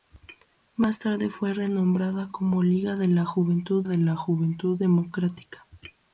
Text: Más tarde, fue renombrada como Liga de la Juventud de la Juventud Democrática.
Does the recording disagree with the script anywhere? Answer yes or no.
no